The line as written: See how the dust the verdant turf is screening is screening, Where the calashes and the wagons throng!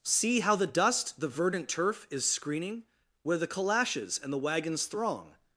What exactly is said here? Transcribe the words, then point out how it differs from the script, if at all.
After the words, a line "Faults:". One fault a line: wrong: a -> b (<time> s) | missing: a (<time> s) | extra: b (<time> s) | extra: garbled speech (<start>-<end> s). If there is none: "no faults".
See how the dust the verdant turf is screening, Where the calashes and the wagons throng!
Faults:
missing: is screening (2.8 s)